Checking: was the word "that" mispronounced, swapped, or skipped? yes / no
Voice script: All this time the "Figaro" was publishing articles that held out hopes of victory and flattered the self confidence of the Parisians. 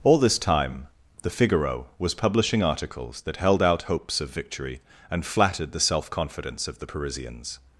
no